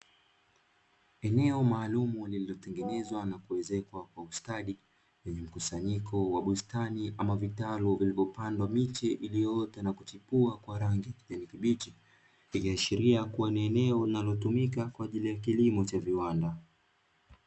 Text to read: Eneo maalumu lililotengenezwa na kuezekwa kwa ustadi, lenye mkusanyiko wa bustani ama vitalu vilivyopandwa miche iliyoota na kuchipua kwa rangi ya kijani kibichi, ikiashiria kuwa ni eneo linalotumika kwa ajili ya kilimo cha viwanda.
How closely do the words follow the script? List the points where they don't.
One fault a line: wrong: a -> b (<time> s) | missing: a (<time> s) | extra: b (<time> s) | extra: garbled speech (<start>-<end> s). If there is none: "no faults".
no faults